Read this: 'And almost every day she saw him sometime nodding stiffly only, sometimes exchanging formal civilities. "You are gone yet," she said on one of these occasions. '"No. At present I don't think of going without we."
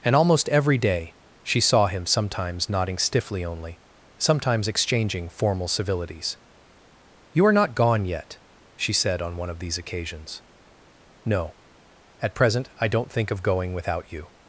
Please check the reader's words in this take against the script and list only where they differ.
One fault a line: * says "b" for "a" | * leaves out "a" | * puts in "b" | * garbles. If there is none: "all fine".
* says "sometimes" for "sometime"
* puts in "not"
* says "you" for "we"